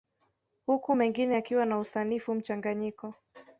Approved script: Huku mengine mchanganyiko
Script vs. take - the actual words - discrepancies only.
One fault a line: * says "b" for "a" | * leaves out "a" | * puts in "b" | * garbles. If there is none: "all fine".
* puts in "yakiwa na usanifu"